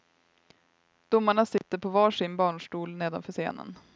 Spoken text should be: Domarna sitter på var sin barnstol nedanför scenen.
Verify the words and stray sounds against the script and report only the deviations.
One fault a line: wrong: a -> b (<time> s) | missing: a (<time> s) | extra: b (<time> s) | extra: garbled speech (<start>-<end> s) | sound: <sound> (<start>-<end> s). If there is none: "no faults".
sound: dropout (1.6-1.6 s)